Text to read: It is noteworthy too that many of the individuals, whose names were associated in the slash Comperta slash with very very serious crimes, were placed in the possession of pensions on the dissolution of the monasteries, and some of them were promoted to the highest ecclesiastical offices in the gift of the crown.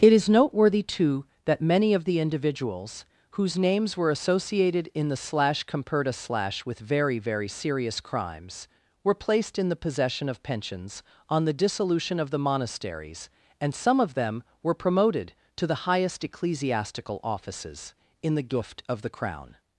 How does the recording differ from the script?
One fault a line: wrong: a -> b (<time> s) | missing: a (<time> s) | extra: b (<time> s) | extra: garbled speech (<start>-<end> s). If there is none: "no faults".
no faults